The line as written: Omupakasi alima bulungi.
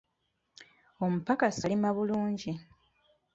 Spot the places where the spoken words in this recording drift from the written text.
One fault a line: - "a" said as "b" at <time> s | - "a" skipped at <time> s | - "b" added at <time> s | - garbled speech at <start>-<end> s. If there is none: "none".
none